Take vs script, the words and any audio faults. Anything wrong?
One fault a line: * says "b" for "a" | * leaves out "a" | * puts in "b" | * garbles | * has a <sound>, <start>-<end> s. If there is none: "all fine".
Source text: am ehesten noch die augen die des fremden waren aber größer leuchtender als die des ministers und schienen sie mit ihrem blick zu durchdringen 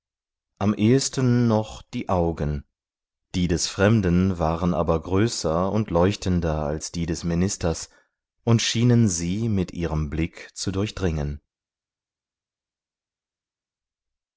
* puts in "und"